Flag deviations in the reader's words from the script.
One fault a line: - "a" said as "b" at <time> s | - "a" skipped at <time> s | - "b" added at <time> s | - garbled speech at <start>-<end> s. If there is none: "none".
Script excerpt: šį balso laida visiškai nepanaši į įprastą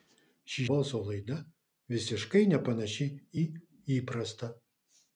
none